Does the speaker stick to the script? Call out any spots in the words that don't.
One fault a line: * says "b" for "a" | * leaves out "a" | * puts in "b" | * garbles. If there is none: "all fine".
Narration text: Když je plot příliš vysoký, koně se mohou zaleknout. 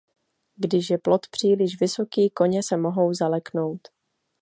all fine